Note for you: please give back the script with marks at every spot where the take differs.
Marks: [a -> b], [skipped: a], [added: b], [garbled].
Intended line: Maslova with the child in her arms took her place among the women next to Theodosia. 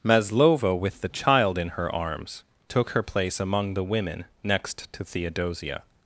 Maslova with the child in her arms took her place among the women next to Theodosia.